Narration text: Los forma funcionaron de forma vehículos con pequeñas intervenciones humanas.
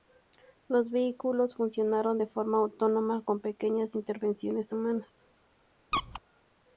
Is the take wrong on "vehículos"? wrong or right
wrong